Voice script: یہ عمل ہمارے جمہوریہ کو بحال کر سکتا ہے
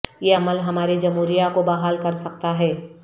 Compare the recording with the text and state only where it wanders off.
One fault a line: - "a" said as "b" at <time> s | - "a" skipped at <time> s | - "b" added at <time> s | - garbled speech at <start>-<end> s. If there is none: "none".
none